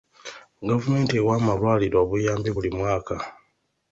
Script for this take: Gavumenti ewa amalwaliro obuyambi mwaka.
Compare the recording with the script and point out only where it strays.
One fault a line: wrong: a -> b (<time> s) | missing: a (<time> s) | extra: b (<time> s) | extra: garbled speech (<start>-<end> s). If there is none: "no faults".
extra: buli (2.5 s)